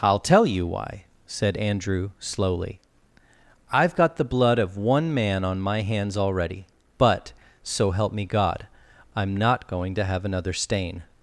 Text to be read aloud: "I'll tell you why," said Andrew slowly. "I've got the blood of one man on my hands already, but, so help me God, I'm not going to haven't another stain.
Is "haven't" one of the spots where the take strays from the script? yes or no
yes